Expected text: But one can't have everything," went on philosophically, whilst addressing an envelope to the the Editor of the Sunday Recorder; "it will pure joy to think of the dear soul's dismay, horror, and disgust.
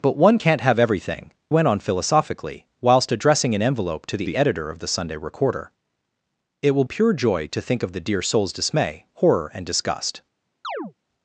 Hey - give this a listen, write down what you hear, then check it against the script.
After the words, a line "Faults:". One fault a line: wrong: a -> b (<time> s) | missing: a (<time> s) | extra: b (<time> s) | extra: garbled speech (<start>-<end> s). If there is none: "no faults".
But one can't have everything," went on philosophically, whilst addressing an envelope to the the Editor of the Sunday Recorder; "it will pure joy to think of the dear soul's dismay, horror, and disgust.
Faults:
no faults